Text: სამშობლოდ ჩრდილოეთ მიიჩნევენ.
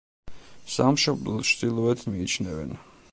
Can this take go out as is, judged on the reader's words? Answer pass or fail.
pass